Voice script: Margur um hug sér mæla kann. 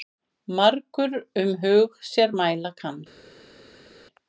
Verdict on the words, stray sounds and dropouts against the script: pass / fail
pass